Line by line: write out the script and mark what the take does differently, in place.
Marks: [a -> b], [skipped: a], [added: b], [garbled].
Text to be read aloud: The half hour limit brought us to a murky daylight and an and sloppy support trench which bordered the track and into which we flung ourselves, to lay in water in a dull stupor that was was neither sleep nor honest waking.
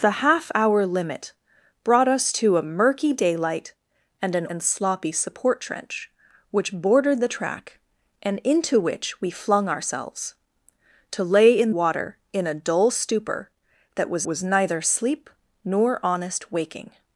The half hour limit brought us to a murky daylight and an and sloppy support trench which bordered the track and into which we flung ourselves, to lay in water in a dull stupor that was was neither sleep nor honest waking.